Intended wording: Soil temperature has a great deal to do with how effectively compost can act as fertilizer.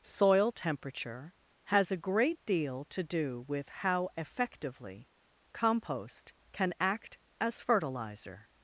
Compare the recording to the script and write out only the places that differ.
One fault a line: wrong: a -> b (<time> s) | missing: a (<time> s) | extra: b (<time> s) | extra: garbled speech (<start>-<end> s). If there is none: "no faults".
no faults